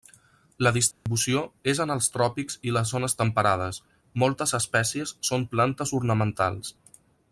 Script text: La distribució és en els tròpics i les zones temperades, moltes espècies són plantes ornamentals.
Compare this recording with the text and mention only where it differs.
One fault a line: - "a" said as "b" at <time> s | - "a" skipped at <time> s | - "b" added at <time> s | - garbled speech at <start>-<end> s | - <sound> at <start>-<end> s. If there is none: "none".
- dropout at 0.9-1.1 s